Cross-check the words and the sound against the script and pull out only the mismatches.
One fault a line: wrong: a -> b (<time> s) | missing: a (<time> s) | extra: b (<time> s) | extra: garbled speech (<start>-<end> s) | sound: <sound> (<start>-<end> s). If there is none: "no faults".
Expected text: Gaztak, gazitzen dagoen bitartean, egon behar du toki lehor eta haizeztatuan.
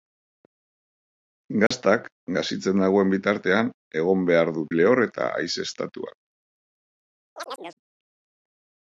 sound: dropout (1.7-1.7 s)
missing: toki (4.7 s)
sound: chirp (7.3-7.8 s)